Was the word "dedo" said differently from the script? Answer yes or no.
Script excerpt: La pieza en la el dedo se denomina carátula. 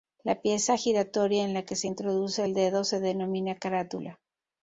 no